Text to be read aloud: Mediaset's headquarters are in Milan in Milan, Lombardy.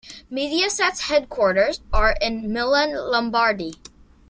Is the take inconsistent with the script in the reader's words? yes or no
yes